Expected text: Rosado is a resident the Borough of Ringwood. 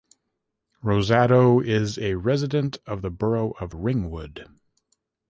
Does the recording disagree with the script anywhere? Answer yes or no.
yes